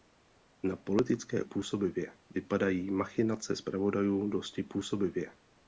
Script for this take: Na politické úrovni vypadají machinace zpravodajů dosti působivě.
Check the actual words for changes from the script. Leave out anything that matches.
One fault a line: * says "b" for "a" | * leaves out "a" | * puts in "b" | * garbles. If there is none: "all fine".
* says "působivě" for "úrovni"